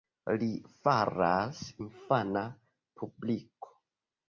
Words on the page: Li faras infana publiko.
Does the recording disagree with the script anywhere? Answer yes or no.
no